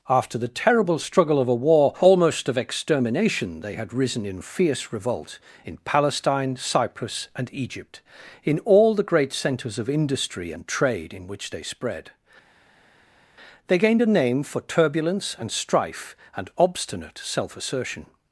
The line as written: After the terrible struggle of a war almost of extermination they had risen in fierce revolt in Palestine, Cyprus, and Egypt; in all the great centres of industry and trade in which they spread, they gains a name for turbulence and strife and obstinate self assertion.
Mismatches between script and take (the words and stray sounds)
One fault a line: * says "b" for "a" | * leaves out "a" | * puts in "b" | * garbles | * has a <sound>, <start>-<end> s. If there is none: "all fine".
* says "gained" for "gains"